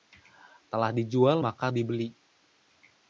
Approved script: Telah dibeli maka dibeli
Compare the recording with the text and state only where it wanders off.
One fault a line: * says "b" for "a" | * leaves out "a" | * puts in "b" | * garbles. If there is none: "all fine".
* says "dijual" for "dibeli"